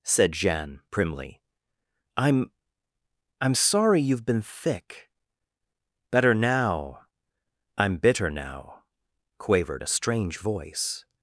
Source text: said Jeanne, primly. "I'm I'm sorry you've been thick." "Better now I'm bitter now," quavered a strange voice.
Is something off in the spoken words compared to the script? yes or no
no